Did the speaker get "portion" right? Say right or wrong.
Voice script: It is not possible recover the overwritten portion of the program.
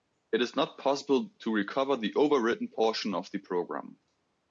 right